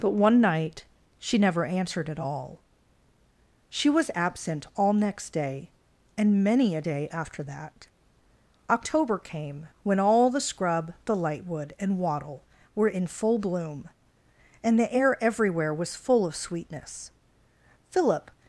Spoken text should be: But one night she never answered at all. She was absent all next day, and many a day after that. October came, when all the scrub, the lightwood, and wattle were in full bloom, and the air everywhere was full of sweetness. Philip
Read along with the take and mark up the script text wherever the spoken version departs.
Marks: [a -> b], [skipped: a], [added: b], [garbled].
But one night she never answered at all. She was absent all next day, and many a day after that. October came, when all the scrub, the lightwood, and wattle were in full bloom, and the air everywhere was full of sweetness. Philip